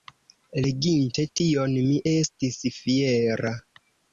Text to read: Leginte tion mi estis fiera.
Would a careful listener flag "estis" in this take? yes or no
no